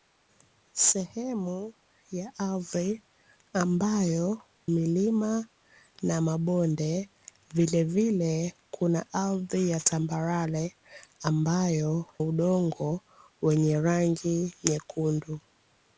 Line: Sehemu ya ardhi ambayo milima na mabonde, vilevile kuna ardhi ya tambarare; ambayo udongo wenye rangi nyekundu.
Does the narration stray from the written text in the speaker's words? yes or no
no